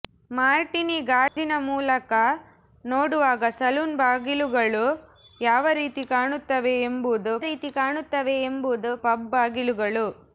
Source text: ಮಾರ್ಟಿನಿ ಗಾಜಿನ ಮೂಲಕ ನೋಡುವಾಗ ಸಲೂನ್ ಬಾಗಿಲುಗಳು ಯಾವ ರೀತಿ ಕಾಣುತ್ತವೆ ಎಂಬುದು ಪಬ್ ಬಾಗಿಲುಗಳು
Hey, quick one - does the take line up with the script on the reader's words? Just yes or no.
no